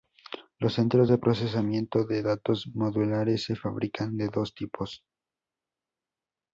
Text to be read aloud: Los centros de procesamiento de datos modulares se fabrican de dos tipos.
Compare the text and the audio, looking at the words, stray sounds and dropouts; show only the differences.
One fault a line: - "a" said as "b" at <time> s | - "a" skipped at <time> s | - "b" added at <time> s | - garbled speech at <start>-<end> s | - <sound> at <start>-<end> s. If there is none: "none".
none